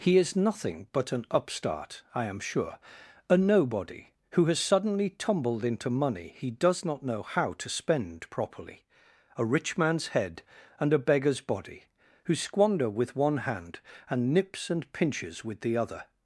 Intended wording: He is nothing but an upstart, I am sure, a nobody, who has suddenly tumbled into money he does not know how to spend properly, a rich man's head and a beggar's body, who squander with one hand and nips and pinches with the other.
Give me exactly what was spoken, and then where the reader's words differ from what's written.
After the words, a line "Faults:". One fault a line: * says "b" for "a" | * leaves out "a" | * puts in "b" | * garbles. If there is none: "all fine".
He is nothing but an upstart, I am sure, a nobody, who has suddenly tumbled into money he does not know how to spend properly, a rich man's head and a beggar's body, who squander with one hand and nips and pinches with the other.
Faults:
all fine